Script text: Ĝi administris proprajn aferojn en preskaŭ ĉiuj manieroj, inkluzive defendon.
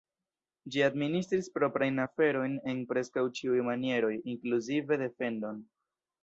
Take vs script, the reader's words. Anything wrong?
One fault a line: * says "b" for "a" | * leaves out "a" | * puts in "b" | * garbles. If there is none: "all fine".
all fine